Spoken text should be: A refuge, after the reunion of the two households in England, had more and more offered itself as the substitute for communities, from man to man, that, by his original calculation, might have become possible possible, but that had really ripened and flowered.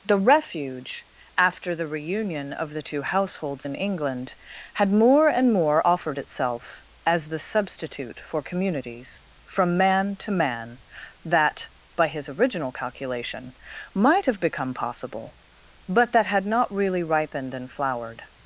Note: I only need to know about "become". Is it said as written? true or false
true